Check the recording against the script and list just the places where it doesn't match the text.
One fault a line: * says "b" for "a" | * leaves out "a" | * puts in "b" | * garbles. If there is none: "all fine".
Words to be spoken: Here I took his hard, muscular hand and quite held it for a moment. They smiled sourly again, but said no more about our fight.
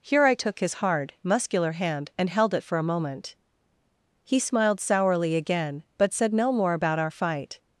* leaves out "quite"
* says "He" for "They"